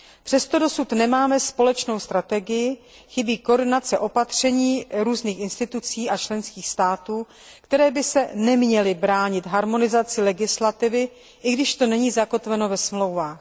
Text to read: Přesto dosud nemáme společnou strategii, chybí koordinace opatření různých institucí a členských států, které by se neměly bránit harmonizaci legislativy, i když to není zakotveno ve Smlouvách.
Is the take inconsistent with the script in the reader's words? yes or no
no